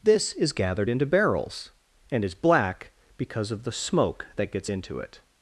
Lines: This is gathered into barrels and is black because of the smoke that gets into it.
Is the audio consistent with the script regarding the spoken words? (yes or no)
yes